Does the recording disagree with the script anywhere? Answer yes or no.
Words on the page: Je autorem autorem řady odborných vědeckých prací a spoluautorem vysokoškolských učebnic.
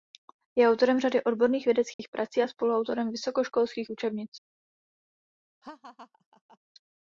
yes